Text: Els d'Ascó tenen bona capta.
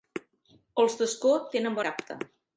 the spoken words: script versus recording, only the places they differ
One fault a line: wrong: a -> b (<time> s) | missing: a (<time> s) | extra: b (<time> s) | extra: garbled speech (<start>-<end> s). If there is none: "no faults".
missing: bona (1.8 s)